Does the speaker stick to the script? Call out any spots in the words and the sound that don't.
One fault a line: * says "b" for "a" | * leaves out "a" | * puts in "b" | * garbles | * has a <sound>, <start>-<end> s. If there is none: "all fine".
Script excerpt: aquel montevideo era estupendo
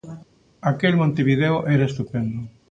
all fine